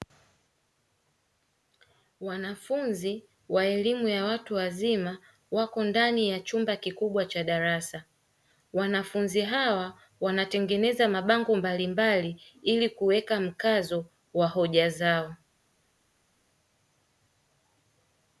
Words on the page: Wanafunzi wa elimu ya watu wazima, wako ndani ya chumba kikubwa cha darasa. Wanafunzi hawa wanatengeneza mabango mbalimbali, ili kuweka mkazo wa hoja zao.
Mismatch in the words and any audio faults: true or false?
false